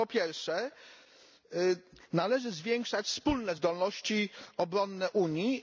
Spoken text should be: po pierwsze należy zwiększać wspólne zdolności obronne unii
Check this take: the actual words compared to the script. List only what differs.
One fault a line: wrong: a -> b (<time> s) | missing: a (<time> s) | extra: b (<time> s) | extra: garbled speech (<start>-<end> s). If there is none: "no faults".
no faults